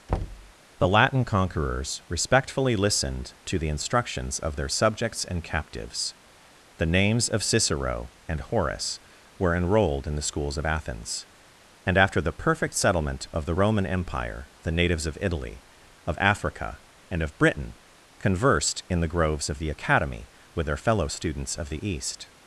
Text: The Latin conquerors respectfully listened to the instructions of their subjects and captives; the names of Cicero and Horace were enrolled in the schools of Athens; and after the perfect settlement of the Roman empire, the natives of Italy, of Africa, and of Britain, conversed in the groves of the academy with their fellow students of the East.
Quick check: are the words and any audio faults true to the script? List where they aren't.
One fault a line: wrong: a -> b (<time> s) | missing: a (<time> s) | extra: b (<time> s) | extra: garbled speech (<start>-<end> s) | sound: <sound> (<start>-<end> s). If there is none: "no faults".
sound: thud (0.1-0.5 s)